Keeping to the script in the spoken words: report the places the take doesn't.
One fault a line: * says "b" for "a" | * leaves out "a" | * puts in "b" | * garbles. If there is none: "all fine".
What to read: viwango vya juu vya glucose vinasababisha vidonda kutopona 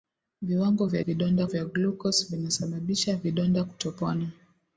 * says "vidonda" for "juu"